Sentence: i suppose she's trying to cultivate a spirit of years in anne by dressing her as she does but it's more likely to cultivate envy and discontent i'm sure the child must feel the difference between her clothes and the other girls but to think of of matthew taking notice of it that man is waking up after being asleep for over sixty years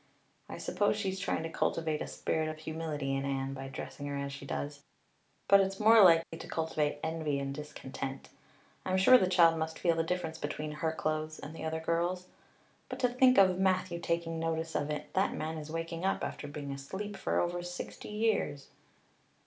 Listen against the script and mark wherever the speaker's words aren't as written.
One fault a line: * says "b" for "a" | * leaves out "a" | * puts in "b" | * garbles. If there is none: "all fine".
* says "humility" for "years"
* leaves out "of"